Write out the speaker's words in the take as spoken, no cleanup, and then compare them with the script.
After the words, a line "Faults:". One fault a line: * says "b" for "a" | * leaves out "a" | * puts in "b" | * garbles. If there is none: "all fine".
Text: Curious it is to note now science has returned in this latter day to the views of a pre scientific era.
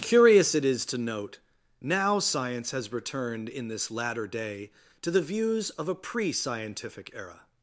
Curious it is to note now science has returned in this latter day to the views of a pre scientific era.
Faults:
all fine